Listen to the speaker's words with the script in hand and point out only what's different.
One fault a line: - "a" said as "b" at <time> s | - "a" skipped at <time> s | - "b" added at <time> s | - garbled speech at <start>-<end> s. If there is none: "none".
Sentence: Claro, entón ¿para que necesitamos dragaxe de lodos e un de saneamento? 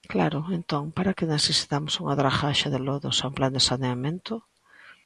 - "unha" added at 2.0 s
- "plan" added at 3.4 s